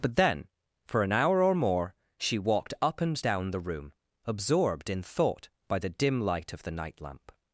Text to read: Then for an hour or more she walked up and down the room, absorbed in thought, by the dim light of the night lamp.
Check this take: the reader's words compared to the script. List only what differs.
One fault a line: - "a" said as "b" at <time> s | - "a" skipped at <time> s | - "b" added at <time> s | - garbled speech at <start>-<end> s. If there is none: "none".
- "but" added at 0.0 s